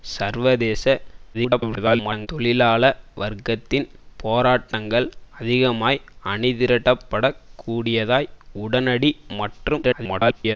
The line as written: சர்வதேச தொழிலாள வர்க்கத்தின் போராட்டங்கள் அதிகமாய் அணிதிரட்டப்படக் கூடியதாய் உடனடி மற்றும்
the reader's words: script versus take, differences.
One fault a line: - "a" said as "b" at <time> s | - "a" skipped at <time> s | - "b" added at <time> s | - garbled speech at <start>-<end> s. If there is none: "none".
- garbled speech at 1.3-2.3 s
- garbled speech at 9.8-10.6 s